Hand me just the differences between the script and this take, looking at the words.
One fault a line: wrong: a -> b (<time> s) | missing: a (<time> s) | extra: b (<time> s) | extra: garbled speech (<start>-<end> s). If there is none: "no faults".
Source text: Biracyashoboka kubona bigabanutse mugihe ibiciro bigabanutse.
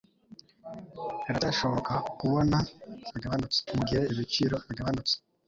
no faults